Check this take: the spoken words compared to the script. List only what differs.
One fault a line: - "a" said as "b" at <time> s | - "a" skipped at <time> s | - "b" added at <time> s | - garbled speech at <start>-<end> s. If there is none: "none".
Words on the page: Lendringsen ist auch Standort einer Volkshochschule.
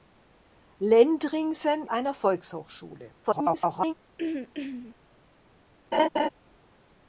- "ist auch Standort" skipped at 1.9 s
- garbled speech at 3.2-3.9 s